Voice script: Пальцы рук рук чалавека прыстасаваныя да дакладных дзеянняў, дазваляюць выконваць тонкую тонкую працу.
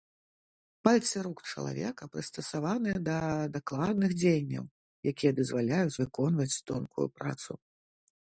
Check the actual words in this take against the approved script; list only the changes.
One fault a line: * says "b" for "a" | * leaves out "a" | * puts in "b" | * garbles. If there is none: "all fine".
* leaves out "рук"
* puts in "якія"
* leaves out "тонкую"